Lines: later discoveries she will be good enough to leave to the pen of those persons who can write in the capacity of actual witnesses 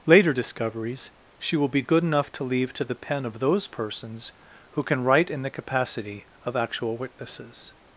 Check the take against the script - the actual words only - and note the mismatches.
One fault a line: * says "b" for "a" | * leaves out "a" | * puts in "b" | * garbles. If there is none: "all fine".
all fine